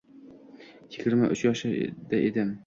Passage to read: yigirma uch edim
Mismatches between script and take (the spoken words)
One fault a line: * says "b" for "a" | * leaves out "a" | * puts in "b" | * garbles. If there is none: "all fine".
* puts in "yoshda"